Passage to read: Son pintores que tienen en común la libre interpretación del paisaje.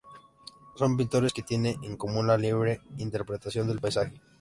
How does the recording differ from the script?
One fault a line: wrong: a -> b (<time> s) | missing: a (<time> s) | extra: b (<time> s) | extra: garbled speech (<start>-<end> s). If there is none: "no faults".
no faults